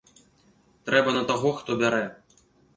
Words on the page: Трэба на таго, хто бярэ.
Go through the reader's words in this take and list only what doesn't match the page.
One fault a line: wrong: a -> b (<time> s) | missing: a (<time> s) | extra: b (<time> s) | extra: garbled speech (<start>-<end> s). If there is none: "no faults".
no faults